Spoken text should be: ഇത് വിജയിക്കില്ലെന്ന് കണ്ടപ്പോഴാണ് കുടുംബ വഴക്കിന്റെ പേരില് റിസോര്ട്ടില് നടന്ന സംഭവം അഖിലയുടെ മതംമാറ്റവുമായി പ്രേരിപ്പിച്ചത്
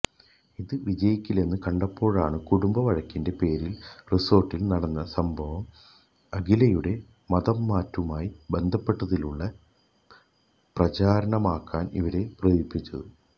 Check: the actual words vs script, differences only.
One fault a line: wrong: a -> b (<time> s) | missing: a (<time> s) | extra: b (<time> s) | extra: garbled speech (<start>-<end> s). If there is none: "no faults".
extra: ബന്ധപ്പെടുത്തിയുള്ള പ്രചാരണമാക്കാന് ഇവരെ (8.5 s)